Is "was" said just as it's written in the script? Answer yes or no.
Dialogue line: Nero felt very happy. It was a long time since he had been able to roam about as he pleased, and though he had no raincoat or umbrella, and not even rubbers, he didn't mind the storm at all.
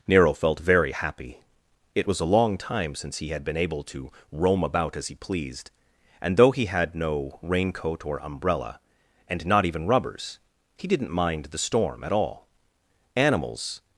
yes